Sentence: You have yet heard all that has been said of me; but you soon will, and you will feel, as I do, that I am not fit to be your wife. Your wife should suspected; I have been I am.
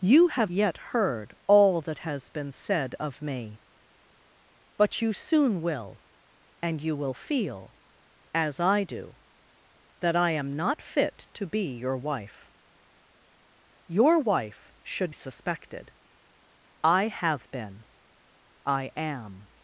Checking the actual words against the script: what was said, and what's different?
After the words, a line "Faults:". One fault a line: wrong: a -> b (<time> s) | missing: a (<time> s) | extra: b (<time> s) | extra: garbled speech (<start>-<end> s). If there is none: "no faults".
You have yet heard all that has been said of me; but you soon will, and you will feel, as I do, that I am not fit to be your wife. Your wife should suspected; I have been I am.
Faults:
no faults